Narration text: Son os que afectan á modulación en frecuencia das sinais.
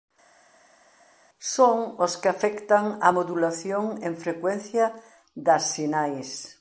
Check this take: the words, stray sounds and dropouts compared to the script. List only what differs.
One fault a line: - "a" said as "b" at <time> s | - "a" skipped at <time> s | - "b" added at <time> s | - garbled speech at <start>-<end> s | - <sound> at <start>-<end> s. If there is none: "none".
none